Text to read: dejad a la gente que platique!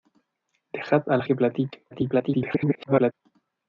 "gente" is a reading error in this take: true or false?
true